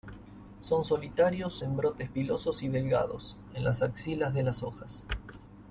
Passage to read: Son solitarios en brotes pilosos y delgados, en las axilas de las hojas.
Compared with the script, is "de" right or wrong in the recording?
right